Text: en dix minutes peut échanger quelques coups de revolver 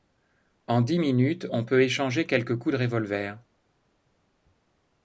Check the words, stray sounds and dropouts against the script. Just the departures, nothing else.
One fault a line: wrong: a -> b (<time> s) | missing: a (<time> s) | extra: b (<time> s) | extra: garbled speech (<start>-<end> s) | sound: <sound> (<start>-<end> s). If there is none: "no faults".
extra: on (1.5 s)